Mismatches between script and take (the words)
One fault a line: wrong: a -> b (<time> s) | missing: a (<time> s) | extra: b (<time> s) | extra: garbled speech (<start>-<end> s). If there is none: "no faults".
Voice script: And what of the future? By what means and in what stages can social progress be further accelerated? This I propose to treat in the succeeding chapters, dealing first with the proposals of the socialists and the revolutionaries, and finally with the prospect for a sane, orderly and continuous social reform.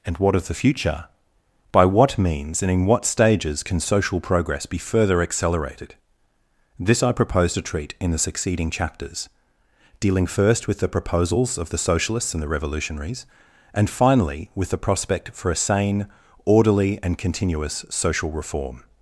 no faults